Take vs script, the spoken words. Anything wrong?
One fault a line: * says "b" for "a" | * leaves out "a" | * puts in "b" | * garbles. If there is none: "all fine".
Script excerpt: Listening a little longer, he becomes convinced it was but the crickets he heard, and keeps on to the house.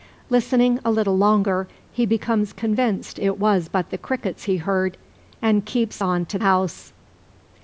* leaves out "the"